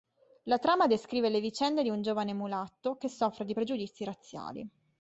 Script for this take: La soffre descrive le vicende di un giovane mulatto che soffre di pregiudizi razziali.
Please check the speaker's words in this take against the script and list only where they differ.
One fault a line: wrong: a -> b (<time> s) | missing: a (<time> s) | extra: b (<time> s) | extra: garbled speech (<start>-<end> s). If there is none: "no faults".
wrong: soffre -> trama (0.6 s)